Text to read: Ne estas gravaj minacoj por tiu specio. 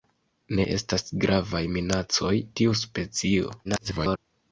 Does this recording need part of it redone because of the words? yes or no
yes